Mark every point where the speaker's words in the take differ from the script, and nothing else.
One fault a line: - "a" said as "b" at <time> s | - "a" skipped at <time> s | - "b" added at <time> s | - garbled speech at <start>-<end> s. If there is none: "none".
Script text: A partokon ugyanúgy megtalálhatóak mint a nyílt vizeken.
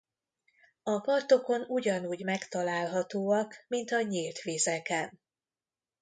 none